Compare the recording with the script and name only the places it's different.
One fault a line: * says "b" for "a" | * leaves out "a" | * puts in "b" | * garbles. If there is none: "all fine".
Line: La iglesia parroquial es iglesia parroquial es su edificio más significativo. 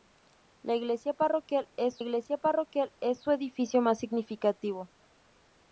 all fine